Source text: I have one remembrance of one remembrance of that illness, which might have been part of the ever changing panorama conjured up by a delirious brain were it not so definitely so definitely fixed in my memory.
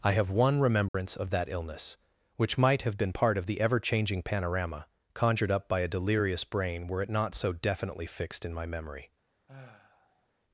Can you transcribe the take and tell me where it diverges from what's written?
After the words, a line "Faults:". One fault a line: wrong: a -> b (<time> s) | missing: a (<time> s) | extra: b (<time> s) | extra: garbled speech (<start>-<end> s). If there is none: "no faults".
I have one remembrance of that illness, which might have been part of the ever changing panorama conjured up by a delirious brain were it not so definitely fixed in my memory.
Faults:
missing: one remembrance of (1.3 s)
missing: so definitely (8.1 s)